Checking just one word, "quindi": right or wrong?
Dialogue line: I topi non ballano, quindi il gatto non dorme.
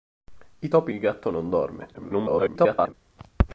wrong